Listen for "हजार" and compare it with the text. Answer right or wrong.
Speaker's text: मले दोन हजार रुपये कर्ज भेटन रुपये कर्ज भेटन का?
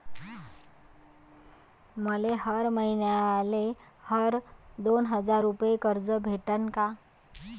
wrong